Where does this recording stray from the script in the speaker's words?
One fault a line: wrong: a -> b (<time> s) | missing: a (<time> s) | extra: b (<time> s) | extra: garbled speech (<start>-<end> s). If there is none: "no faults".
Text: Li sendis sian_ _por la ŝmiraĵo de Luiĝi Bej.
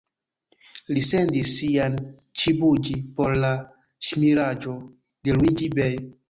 extra: ĉibuĝi (2.4 s)